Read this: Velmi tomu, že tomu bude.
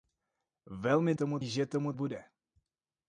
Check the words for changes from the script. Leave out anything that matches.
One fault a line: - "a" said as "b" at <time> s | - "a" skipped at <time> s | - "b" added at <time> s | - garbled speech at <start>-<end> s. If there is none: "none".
none